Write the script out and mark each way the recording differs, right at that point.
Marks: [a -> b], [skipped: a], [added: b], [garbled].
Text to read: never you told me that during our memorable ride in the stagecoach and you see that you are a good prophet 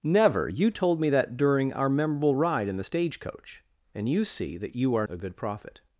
never you told me that during our memorable ride in the stagecoach and you see that you are a good prophet